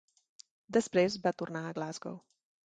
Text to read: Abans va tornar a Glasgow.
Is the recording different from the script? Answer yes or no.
yes